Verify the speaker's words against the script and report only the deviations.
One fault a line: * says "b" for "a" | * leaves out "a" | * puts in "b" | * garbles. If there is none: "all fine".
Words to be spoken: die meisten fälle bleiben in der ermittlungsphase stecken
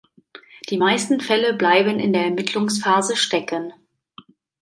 all fine